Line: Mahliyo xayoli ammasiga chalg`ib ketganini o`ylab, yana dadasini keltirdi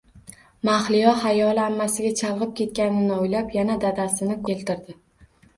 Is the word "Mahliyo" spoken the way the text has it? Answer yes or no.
yes